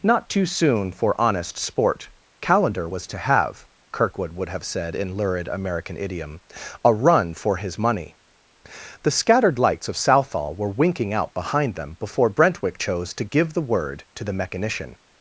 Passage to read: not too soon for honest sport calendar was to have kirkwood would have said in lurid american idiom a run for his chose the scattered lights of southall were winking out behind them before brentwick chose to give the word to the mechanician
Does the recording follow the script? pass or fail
fail